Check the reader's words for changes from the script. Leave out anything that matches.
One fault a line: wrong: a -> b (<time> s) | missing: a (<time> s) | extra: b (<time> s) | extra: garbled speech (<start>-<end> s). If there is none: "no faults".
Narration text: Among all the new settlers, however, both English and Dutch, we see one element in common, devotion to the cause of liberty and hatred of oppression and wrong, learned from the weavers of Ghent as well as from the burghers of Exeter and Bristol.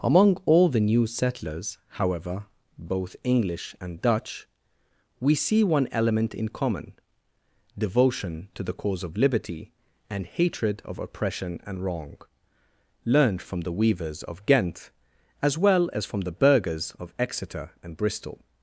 no faults